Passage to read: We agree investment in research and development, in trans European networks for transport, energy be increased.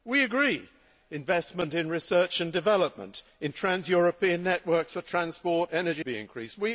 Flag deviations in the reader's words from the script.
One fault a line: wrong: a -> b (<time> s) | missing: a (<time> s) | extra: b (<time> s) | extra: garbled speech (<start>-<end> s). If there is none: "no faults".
no faults